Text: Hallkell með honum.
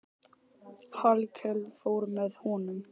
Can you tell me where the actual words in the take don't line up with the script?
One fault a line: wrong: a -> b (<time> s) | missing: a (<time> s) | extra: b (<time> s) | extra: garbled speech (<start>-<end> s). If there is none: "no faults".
extra: fór (1.8 s)